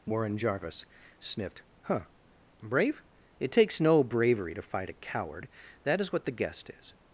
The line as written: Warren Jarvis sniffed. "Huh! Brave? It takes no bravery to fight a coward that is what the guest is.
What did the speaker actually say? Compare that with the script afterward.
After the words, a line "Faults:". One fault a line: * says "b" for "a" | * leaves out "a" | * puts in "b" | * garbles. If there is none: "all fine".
Warren Jarvis sniffed. "Huh! Brave? It takes no bravery to fight a coward that is what the guest is.
Faults:
all fine